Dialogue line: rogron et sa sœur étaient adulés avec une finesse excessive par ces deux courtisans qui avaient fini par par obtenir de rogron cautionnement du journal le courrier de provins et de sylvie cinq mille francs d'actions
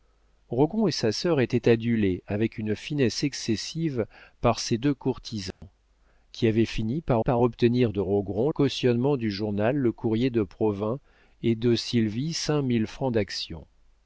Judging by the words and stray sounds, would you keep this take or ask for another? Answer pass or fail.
fail